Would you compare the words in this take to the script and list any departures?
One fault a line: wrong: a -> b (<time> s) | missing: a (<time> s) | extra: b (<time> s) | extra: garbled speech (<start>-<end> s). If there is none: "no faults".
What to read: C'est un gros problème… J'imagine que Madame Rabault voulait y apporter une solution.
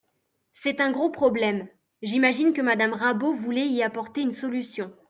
no faults